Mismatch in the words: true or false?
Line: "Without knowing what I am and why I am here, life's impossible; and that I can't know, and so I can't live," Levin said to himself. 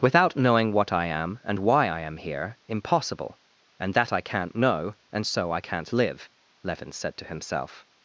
true